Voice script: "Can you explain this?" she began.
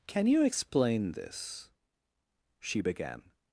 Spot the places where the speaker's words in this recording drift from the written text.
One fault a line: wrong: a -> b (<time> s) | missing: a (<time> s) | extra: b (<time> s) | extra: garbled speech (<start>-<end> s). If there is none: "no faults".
no faults